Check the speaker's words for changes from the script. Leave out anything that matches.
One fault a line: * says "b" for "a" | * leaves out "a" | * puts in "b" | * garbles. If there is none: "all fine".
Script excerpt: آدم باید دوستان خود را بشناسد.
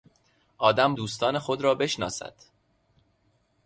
* leaves out "باید"